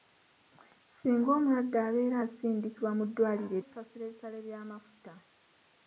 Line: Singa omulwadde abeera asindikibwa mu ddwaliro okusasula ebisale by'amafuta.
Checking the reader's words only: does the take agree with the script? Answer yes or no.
yes